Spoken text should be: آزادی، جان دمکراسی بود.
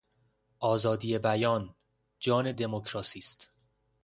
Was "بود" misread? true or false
true